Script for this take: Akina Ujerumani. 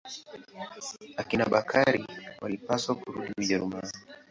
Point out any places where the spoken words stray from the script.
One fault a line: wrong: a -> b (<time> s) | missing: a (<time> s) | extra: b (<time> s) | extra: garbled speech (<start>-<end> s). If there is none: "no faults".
extra: Bakari walipaswa kurudi (1.5 s)